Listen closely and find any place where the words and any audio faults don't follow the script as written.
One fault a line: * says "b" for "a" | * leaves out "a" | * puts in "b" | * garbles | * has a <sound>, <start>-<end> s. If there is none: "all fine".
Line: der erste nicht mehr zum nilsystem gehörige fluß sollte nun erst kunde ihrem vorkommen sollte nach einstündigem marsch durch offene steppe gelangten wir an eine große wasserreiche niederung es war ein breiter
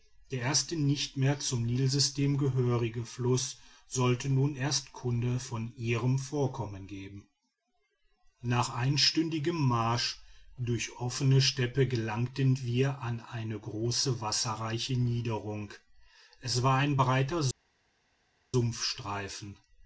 * puts in "von"
* says "geben" for "sollte"